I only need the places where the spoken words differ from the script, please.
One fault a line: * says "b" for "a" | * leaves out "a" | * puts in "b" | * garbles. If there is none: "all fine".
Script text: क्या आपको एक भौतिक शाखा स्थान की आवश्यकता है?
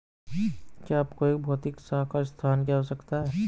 all fine